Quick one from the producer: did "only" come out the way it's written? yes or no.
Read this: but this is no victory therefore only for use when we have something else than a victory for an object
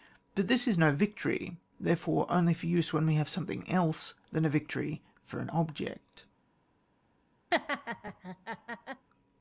yes